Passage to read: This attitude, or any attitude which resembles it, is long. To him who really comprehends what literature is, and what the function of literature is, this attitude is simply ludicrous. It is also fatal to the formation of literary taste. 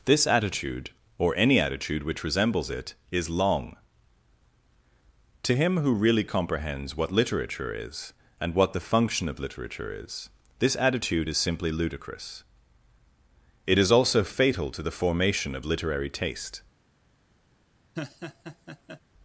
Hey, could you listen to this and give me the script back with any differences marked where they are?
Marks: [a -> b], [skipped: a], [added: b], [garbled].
This attitude, or any attitude which resembles it, is long. To him who really comprehends what literature is, and what the function of literature is, this attitude is simply ludicrous. It is also fatal to the formation of literary taste.